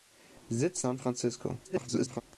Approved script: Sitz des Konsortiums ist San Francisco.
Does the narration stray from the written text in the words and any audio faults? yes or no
yes